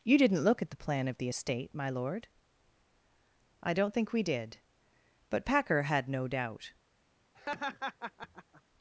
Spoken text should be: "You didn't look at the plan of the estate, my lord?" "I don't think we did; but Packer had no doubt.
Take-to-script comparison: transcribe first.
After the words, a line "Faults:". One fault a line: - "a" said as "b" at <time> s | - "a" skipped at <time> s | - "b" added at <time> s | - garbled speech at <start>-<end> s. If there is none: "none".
"You didn't look at the plan of the estate, my lord?" "I don't think we did; but Packer had no doubt.
Faults:
none